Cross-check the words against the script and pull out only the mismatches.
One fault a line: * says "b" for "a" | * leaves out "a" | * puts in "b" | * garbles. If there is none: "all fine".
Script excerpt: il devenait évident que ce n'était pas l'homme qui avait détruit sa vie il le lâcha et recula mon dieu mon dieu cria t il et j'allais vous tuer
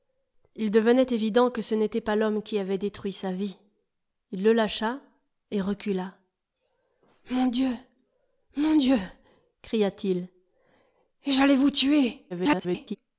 * garbles